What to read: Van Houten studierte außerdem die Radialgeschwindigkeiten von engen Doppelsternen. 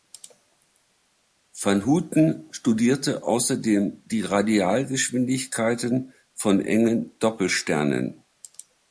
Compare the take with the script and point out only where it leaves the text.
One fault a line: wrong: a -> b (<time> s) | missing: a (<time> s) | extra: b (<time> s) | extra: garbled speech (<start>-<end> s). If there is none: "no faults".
no faults